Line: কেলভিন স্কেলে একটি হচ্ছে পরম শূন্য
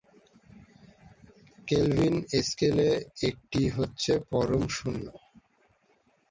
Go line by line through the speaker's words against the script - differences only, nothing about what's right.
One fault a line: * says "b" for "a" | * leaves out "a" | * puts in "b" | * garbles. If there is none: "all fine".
all fine